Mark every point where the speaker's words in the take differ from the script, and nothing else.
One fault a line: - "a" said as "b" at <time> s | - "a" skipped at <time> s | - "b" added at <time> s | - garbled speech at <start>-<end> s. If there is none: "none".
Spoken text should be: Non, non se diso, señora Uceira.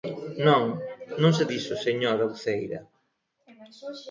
none